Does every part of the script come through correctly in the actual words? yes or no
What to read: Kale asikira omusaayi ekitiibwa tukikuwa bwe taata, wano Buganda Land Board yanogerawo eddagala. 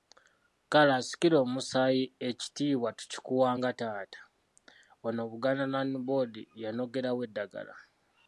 no